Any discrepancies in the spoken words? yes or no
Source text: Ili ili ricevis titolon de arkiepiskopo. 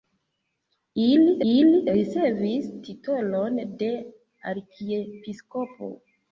no